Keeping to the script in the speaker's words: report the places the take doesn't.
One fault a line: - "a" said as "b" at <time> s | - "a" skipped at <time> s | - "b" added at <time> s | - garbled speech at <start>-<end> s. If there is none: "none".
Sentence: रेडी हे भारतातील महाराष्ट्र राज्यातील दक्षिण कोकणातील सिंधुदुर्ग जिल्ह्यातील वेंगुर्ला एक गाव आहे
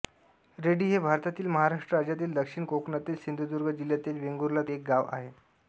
none